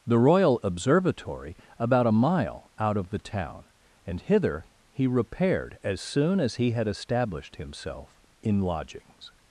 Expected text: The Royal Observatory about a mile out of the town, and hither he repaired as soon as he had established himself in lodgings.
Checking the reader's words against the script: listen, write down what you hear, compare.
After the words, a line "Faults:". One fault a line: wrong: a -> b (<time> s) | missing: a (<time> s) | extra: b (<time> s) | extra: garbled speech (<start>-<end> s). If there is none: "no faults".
The Royal Observatory about a mile out of the town, and hither he repaired as soon as he had established himself in lodgings.
Faults:
no faults